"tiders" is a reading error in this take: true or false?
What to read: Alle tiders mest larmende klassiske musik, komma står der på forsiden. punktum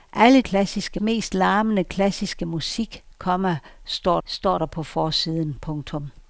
true